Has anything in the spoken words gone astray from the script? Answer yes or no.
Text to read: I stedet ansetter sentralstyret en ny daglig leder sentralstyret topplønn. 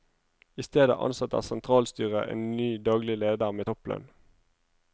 yes